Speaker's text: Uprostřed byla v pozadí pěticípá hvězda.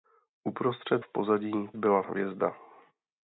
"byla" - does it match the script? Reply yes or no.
no